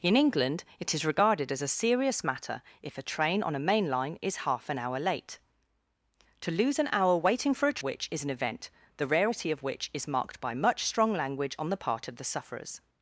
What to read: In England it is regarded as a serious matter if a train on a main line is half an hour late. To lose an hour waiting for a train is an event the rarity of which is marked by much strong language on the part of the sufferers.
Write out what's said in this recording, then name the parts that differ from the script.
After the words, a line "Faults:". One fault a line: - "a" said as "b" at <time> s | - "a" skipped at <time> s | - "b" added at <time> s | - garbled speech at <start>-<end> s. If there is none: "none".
In England it is regarded as a serious matter if a train on a main line is half an hour late. To lose an hour waiting for a which is an event the rarity of which is marked by much strong language on the part of the sufferers.
Faults:
- "train" said as "which" at 7.8 s